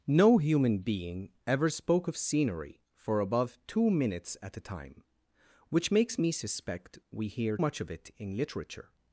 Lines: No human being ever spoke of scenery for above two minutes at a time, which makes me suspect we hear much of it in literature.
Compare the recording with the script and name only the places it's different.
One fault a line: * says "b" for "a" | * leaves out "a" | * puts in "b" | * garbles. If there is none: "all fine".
all fine